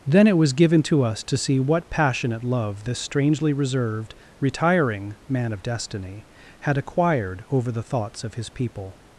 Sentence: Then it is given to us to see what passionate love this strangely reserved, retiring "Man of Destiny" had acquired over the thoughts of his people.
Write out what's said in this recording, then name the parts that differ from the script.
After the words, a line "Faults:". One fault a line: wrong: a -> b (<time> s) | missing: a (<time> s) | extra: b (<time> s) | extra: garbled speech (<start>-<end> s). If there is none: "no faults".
Then it was given to us to see what passionate love this strangely reserved, retiring "Man of Destiny" had acquired over the thoughts of his people.
Faults:
wrong: is -> was (0.4 s)